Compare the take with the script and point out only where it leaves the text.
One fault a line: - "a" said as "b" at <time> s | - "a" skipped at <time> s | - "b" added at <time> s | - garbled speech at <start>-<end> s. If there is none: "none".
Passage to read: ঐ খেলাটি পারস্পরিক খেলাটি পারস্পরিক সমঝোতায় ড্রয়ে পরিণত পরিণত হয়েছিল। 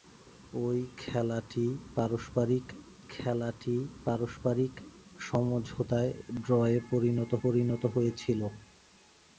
none